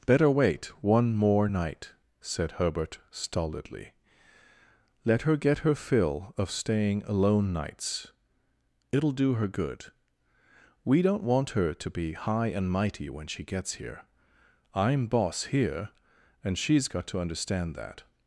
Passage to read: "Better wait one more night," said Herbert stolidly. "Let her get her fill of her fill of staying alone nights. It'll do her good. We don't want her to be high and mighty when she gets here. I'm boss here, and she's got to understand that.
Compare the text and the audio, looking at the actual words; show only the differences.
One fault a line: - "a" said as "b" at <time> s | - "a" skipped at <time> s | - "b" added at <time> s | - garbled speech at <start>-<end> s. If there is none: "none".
- "her fill of" skipped at 6.5 s